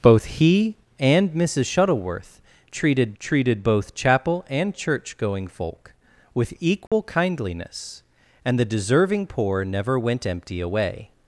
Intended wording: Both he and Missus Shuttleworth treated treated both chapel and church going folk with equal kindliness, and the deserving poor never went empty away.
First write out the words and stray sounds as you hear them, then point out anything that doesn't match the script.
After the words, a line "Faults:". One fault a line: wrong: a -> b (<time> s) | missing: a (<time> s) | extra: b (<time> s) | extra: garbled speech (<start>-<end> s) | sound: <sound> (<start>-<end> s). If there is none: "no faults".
Both he and Missus Shuttleworth treated treated both chapel and church going folk with equal kindliness, and the deserving poor never went empty away.
Faults:
sound: dropout (6.9-6.9 s)